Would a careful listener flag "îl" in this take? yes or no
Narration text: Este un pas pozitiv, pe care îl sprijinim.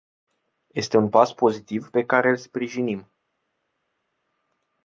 no